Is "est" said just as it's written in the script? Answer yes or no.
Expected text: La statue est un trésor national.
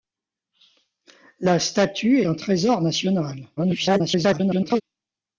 no